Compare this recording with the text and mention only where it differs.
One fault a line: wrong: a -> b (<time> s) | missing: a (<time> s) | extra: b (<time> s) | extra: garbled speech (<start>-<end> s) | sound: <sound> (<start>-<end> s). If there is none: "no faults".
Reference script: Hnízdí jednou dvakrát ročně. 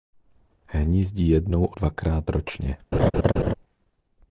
sound: laugh (2.9-3.5 s)